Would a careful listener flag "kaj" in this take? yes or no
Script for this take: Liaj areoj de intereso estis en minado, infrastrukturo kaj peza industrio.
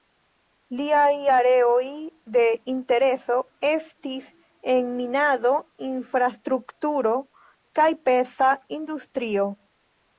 no